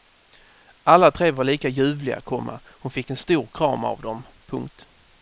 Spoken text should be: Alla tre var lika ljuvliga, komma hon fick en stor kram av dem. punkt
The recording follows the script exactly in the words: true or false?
true